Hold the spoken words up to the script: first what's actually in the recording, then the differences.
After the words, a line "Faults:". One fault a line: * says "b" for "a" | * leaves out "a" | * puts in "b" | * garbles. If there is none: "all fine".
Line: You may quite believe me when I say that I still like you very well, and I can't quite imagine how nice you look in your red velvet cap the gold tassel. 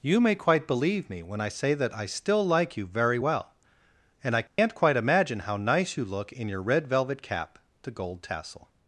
You may quite believe me when I say that I still like you very well, and I can't quite imagine how nice you look in your red velvet cap the gold tassel.
Faults:
all fine